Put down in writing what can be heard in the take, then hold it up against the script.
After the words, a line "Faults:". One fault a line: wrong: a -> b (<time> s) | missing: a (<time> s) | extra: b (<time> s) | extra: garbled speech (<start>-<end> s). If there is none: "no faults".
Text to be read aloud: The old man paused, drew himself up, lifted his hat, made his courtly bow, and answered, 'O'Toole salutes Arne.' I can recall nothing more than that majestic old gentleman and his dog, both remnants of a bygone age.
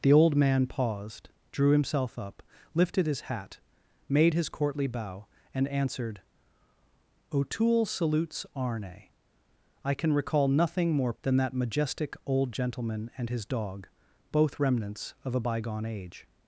The old man paused, drew himself up, lifted his hat, made his courtly bow, and answered, 'O'Toole salutes Arne.' I can recall nothing more than that majestic old gentleman and his dog, both remnants of a bygone age.
Faults:
no faults